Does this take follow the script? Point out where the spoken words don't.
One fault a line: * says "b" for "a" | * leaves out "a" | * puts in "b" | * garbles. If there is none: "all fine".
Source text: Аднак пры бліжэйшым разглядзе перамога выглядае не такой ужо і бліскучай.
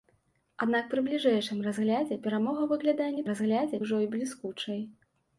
* says "разглядзе" for "такой"